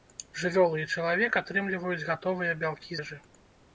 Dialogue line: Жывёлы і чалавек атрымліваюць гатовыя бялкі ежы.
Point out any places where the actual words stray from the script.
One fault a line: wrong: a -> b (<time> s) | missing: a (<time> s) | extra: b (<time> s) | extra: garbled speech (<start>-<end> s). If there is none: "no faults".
no faults